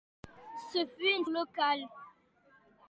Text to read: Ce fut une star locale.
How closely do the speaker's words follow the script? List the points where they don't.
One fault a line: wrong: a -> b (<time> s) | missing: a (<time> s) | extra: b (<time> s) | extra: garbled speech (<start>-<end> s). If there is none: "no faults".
missing: star (1.2 s)